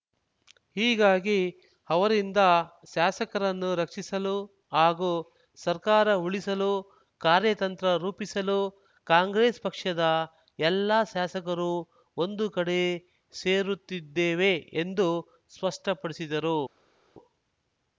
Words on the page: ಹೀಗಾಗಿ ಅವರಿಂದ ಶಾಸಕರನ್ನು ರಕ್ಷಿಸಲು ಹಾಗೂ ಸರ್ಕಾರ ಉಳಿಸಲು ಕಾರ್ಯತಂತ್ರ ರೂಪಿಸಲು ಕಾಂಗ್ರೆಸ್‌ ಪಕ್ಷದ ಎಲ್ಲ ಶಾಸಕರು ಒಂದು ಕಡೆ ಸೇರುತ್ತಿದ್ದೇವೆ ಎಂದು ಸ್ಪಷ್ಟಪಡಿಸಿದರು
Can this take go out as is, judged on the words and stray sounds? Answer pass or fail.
pass